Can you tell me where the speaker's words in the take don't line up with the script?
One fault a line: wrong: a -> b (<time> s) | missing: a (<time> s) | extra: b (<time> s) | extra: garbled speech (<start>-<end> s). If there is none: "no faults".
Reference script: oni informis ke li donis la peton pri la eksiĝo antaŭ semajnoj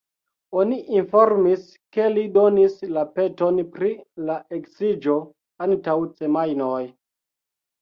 no faults